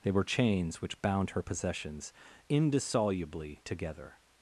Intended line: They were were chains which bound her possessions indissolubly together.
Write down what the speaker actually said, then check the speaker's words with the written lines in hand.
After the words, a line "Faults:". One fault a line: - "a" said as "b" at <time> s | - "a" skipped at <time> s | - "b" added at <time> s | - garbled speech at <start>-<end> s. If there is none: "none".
They were chains which bound her possessions indissolubly together.
Faults:
- "were" skipped at 0.2 s